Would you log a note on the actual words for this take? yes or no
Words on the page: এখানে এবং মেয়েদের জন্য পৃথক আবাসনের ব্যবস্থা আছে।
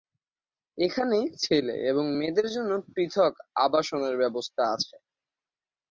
yes